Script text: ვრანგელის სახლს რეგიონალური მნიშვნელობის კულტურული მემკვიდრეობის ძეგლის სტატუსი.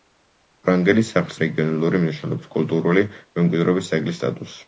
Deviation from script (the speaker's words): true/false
false